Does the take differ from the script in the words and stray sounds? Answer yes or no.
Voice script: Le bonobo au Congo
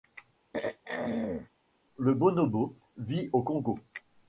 yes